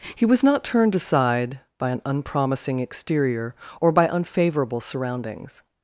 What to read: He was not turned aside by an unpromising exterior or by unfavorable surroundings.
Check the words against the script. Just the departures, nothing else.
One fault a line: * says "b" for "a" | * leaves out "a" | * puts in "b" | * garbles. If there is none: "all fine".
all fine